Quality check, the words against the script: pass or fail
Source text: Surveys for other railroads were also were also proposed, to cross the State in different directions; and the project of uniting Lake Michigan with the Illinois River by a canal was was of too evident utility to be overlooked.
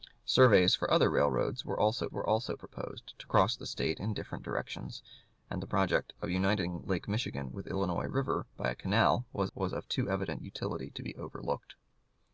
pass